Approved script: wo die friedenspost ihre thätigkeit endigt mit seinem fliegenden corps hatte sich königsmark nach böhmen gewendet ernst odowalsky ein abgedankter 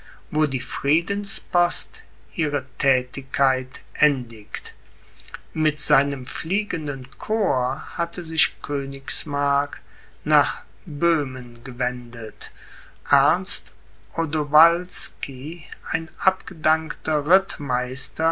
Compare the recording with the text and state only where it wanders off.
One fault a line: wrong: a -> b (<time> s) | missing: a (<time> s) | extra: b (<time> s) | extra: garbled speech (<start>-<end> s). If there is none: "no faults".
no faults